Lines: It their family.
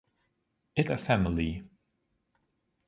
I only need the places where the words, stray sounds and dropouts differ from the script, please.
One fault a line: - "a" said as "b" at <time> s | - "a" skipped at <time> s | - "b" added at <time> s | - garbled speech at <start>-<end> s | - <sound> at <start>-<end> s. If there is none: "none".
none